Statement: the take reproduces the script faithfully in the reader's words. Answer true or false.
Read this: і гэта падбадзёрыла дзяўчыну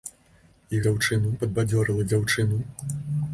false